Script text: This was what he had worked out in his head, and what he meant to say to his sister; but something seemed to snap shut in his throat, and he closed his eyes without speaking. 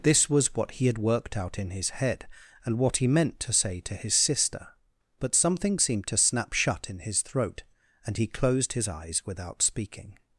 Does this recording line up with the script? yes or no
yes